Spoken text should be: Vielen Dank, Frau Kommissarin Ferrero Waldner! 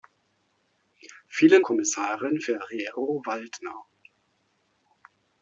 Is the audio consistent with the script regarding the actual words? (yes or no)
no